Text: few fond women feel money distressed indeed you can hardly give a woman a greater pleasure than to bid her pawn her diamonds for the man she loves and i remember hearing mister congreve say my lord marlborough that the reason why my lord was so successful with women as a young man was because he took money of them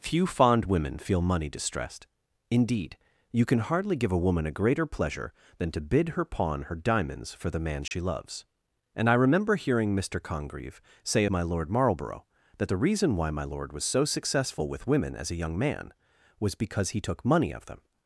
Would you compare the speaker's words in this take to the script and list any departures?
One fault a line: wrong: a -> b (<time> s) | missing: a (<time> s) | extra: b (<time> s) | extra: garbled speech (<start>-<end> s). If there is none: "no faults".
no faults